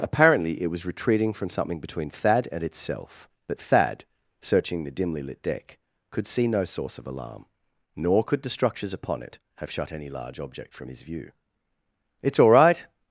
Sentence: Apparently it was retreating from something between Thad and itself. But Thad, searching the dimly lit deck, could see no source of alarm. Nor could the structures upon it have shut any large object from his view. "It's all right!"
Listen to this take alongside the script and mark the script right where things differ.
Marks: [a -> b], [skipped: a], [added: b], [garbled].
Apparently it was retreating from something between Thad and itself. But Thad, searching the dimly lit deck, could see no source of alarm. Nor could the structures upon it have shut any large object from his view. "It's all right!"